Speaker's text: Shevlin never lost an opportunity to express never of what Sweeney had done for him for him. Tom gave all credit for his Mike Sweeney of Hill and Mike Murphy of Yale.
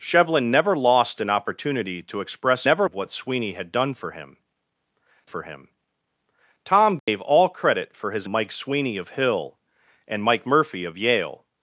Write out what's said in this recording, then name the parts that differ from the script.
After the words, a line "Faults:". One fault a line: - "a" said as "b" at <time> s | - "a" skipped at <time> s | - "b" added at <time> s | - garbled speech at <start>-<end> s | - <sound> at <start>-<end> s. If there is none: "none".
Shevlin never lost an opportunity to express never of what Sweeney had done for him for him. Tom gave all credit for his Mike Sweeney of Hill and Mike Murphy of Yale.
Faults:
- dropout at 7.0-7.1 s